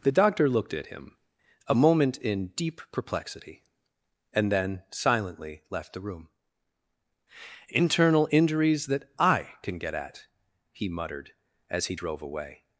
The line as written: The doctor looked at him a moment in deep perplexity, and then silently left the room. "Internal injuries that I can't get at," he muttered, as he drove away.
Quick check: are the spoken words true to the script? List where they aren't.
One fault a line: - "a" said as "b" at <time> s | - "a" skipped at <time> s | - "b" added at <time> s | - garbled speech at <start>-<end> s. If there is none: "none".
- "can't" said as "can" at 9.6 s